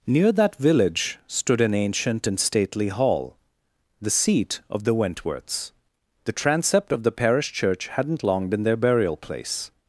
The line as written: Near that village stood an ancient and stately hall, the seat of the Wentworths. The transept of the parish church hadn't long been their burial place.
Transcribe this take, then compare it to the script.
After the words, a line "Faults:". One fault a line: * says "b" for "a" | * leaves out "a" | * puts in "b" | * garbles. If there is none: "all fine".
Near that village stood an ancient and stately hall, the seat of the Wentworths. The transept of the parish church hadn't long been their burial place.
Faults:
all fine